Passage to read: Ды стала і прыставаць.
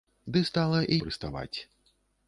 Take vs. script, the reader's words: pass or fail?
pass